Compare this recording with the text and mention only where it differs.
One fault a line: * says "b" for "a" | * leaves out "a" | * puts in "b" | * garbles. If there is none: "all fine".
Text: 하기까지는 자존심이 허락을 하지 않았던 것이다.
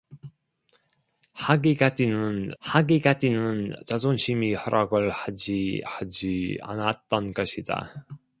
* puts in "하기까지는"
* puts in "하지"